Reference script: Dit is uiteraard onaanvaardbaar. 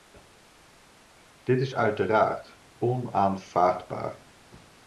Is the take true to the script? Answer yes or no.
yes